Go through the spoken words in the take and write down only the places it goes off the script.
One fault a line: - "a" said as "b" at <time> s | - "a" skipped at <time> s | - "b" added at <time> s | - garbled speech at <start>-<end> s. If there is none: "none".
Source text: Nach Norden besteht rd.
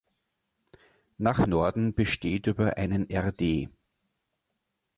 - "über einen" added at 2.5 s